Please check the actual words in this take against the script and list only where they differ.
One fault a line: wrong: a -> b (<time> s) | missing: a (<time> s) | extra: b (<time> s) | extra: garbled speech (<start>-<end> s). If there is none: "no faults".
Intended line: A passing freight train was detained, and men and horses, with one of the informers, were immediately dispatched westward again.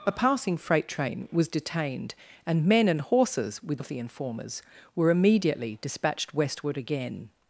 missing: one (3.8 s)